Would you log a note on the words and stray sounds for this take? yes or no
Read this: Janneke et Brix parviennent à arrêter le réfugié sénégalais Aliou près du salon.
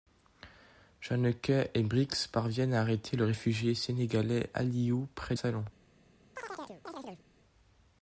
yes